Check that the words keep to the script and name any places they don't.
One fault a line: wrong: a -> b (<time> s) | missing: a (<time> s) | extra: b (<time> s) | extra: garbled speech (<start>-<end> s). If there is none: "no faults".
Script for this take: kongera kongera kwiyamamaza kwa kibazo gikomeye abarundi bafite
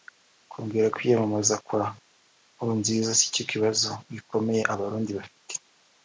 missing: kongera (0.9 s)
extra: nkurunziza sicyo (2.5 s)